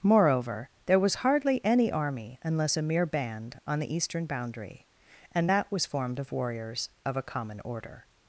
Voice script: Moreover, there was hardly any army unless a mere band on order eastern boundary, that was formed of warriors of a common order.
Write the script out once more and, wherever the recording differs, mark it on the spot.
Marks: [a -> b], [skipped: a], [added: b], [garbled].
Moreover, there was hardly any army unless a mere band on [order -> the] eastern boundary, [added: and] that was formed of warriors of a common order.